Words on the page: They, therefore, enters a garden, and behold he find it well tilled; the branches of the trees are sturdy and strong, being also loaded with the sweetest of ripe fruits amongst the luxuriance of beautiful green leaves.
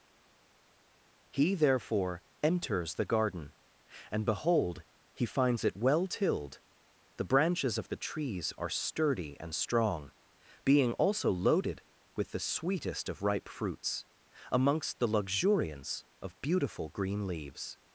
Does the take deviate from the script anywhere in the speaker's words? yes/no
yes